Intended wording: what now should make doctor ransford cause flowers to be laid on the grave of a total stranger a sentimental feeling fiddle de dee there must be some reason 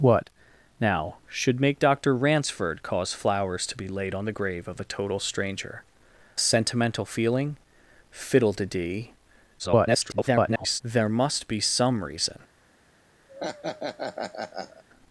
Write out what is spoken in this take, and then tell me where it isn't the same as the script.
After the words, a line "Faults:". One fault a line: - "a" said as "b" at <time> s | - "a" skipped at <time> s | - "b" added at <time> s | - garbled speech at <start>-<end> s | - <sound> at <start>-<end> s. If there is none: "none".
what now should make doctor ransford cause flowers to be laid on the grave of a total stranger sentimental feeling fiddle de dee [garbled] there must be some reason
Faults:
- "a" skipped at 5.8 s
- garbled speech at 9.6-10.8 s
- laugh at 13.3-14.8 s